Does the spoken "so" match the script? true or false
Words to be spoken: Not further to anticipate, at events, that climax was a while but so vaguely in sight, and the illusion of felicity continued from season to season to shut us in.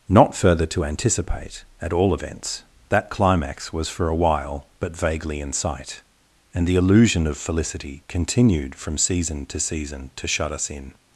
false